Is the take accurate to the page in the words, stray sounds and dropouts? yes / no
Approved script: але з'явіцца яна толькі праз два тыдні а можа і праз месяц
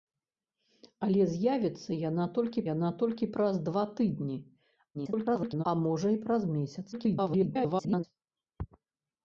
no